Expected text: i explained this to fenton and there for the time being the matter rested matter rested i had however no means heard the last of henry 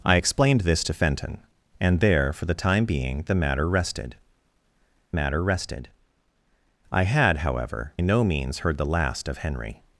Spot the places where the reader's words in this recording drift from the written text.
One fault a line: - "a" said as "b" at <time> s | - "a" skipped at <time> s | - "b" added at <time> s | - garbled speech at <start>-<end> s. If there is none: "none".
none